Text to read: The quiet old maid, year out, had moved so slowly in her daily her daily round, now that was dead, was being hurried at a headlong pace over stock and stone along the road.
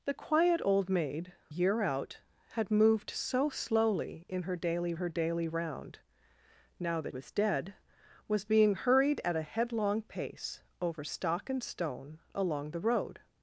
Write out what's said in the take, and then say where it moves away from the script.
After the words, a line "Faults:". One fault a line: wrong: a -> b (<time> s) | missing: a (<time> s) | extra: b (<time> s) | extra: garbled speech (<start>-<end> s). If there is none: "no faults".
The quiet old maid, year out, had moved so slowly in her daily her daily round, now that was dead, was being hurried at a headlong pace over stock and stone along the road.
Faults:
no faults